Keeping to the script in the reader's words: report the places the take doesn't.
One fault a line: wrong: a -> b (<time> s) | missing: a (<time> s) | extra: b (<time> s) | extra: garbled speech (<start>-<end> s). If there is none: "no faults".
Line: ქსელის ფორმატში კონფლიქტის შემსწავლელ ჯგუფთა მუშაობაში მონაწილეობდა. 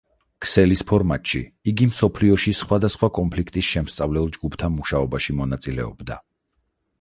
extra: იგი მსოფლიოში სხვადასხვა (1.7 s)